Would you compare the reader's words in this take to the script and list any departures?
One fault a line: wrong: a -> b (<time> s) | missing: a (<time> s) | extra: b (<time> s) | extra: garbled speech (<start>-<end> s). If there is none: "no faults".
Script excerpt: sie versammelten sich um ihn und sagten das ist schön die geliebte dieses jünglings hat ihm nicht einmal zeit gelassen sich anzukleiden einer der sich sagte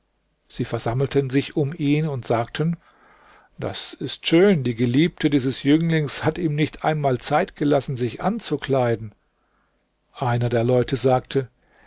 wrong: sich -> leute (10.6 s)